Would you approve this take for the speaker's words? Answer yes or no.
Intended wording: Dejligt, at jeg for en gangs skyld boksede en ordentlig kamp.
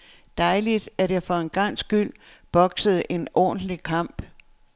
yes